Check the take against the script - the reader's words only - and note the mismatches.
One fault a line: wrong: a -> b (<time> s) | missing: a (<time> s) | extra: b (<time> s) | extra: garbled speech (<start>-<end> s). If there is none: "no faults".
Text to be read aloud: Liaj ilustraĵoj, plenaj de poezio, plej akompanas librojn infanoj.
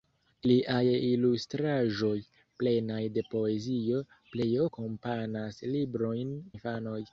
no faults